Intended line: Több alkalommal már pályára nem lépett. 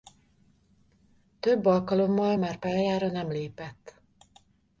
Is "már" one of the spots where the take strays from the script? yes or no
no